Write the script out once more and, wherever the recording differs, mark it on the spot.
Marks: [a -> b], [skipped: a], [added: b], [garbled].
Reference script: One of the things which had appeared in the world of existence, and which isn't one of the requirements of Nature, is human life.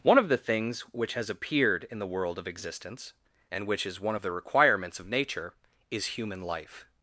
One of the things which [had -> has] appeared in the world of existence, and which [isn't -> is] one of the requirements of Nature, is human life.